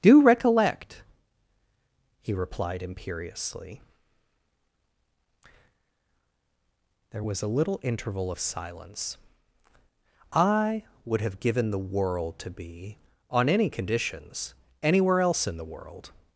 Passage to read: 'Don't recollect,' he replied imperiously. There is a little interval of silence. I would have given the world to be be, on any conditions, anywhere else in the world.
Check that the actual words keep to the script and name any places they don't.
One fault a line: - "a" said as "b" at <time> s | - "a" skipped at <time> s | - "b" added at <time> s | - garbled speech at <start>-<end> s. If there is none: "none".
- "Don't" said as "Do" at 0.0 s
- "is" said as "was" at 7.2 s
- "be" skipped at 13.0 s